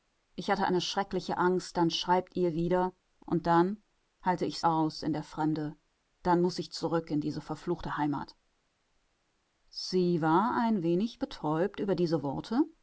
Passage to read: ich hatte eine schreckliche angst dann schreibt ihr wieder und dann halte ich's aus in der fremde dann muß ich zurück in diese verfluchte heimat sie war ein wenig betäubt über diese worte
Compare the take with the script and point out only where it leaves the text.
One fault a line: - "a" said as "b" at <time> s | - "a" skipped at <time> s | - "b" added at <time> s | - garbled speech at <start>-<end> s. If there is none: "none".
none